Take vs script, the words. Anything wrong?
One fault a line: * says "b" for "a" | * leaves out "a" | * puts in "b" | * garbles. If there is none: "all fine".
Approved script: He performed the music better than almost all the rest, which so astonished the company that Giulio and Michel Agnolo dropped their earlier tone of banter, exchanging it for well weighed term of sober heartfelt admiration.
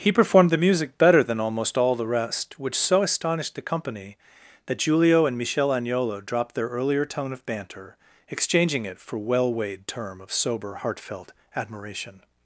all fine